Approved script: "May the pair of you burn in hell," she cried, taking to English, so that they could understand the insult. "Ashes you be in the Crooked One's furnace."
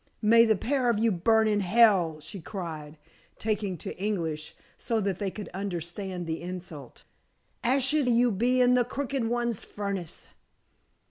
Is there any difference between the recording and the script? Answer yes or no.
no